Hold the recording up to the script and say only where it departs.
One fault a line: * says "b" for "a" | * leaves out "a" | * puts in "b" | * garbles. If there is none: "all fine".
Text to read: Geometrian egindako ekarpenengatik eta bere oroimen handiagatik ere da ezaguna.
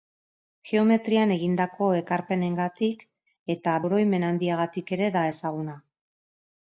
* leaves out "bere"